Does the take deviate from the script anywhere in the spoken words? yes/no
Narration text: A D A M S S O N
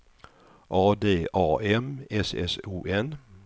no